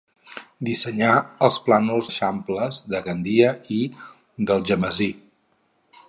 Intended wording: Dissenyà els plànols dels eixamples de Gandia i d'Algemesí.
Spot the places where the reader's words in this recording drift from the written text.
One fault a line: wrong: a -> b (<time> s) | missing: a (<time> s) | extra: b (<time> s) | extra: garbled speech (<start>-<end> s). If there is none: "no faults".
missing: dels (2.1 s)